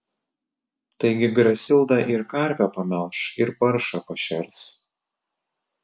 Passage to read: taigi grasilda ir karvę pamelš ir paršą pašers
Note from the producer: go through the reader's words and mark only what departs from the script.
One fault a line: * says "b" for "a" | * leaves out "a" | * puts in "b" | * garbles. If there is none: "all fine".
all fine